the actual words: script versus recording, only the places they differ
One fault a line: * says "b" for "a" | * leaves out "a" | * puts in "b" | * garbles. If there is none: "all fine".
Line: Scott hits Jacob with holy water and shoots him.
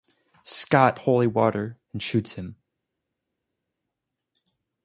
* leaves out "hits Jacob with"